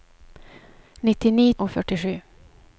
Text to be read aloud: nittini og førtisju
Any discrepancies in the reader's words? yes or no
no